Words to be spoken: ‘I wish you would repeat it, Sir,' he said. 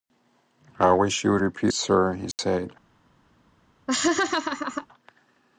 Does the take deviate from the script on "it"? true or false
true